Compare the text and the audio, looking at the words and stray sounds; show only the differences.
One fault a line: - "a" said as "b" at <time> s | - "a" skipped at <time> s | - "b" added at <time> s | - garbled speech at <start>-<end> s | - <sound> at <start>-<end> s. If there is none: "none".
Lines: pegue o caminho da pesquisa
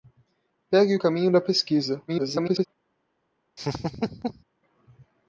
- garbled speech at 2.1-2.7 s
- laugh at 3.6-4.4 s